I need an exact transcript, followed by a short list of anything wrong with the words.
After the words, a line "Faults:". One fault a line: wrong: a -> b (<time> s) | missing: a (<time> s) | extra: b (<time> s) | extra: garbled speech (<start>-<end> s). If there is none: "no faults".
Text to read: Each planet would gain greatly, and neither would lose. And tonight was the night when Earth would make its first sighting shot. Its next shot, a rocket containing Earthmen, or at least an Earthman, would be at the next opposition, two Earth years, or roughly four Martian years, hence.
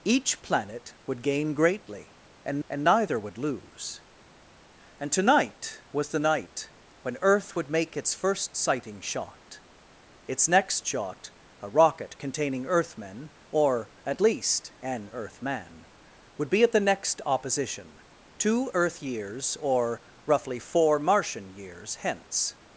Each planet would gain greatly, and and neither would lose. And tonight was the night when Earth would make its first sighting shot. Its next shot, a rocket containing Earthmen, or at least an Earthman, would be at the next opposition, two Earth years, or roughly four Martian years, hence.
Faults:
extra: and (2.7 s)